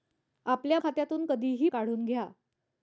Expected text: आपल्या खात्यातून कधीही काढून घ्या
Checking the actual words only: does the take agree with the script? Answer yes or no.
yes